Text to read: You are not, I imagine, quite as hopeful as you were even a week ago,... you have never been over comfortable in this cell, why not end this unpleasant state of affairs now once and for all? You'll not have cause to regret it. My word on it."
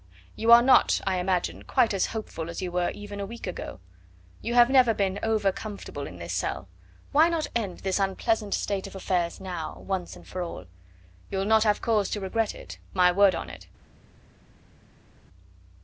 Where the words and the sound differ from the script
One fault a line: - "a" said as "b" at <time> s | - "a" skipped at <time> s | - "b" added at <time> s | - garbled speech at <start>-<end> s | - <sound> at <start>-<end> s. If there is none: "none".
none